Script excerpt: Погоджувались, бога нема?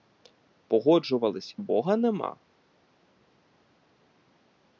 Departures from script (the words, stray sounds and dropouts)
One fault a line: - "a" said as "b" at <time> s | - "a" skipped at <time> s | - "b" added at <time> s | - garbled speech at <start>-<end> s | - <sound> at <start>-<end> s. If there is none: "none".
none